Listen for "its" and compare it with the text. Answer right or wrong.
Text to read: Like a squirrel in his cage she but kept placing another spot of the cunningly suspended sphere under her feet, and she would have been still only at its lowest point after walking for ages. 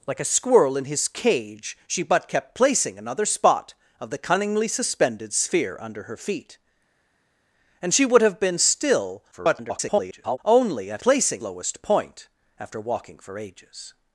wrong